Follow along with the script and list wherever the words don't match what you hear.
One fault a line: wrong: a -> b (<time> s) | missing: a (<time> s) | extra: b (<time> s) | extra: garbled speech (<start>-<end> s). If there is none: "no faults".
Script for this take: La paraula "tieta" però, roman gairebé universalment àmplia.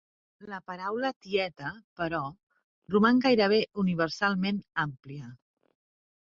no faults